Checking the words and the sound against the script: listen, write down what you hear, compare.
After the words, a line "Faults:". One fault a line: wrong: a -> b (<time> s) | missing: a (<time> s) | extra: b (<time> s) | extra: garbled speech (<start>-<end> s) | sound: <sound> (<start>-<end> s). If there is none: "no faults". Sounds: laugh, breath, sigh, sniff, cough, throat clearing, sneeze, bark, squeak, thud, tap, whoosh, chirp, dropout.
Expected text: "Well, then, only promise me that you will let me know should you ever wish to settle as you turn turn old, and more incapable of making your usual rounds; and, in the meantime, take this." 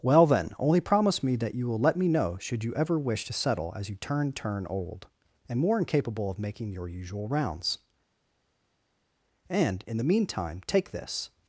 "Well, then, only promise me that you will let me know should you ever wish to settle as you turn turn old, and more incapable of making your usual rounds; and, in the meantime, take this."
Faults:
no faults